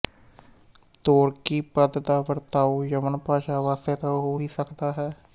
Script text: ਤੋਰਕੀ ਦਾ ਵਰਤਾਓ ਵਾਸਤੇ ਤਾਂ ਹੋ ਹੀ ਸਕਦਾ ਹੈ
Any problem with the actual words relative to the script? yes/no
yes